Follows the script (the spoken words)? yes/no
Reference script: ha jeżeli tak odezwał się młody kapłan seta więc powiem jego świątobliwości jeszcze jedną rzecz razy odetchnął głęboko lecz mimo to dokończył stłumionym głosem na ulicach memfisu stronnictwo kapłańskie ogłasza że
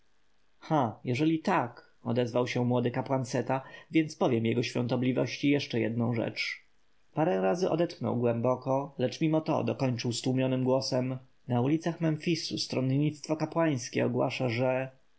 no